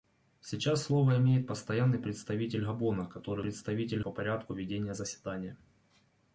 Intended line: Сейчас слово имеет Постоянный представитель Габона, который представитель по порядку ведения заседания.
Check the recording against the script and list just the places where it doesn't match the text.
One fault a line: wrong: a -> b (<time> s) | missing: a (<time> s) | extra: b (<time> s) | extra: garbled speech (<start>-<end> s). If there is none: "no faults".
no faults